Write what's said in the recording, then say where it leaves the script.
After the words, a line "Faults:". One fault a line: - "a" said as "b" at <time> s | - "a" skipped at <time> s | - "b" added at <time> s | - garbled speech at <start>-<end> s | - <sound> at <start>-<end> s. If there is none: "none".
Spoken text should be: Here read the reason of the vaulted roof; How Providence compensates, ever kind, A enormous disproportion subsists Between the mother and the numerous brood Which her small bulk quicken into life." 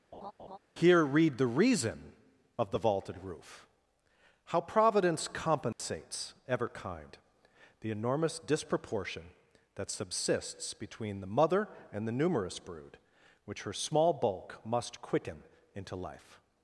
Here read the reason of the vaulted roof; How Providence compensates, ever kind, The enormous disproportion that subsists Between the mother and the numerous brood Which her small bulk must quicken into life."
Faults:
- laugh at 0.1-0.6 s
- dropout at 5.7-5.8 s
- "A" said as "The" at 7.8 s
- "that" added at 9.7 s
- "must" added at 14.6 s